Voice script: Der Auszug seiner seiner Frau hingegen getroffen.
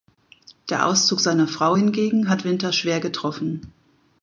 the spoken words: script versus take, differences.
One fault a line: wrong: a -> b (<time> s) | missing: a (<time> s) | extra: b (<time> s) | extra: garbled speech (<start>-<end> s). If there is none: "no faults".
missing: seiner (1.5 s)
extra: hat Winter schwer (2.3 s)